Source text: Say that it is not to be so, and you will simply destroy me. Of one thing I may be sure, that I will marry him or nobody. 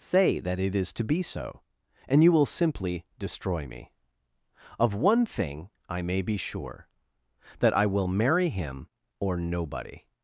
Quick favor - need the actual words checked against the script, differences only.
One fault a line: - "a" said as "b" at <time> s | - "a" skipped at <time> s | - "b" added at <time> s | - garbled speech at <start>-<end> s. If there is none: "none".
- "not" skipped at 0.9 s